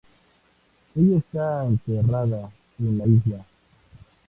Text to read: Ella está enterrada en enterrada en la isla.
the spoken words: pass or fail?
fail